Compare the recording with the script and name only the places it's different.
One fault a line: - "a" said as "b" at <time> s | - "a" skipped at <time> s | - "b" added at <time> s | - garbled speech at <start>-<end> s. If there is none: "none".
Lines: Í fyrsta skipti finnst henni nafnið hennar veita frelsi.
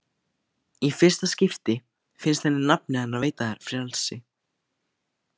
none